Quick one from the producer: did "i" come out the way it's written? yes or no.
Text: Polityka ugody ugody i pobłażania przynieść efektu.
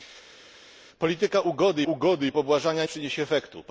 yes